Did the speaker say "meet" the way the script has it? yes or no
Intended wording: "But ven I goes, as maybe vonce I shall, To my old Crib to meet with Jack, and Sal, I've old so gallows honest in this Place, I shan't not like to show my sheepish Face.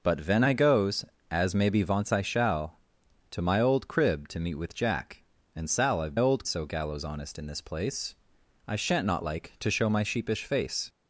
yes